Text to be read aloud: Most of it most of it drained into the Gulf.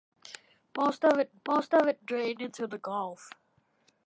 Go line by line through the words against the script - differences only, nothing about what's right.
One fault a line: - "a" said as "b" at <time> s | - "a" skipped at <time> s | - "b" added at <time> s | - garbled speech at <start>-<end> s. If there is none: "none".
none